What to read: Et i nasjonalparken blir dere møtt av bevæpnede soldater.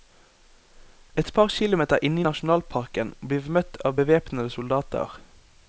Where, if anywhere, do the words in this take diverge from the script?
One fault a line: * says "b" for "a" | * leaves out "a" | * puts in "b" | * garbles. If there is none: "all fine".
* puts in "par kilometer inne"
* says "vi" for "dere"